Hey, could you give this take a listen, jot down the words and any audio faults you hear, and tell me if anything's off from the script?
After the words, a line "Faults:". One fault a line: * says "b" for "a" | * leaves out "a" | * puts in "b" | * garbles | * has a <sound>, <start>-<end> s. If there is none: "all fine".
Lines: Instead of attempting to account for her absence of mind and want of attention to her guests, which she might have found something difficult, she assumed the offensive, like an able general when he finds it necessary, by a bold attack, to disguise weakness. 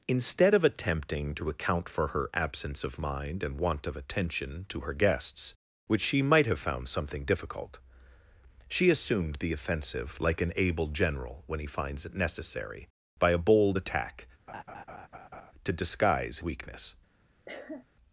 Instead of attempting to account for her absence of mind and want of attention to her guests, which she might have found something difficult, she assumed the offensive, like an able general when he finds it necessary, by a bold attack, to disguise weakness.
Faults:
* has a laugh, 14.5-15.5 s
* has a cough, 17.5-17.8 s